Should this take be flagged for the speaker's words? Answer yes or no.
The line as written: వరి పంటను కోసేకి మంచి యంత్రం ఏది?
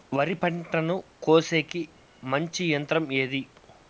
no